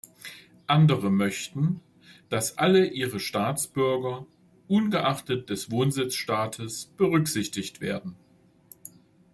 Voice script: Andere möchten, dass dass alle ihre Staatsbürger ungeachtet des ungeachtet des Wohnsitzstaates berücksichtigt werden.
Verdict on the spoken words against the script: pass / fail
fail